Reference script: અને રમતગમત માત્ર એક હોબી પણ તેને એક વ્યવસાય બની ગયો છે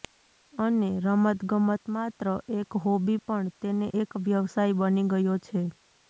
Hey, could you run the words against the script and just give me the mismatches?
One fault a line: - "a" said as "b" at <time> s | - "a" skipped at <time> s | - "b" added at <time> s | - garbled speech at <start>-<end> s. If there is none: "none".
none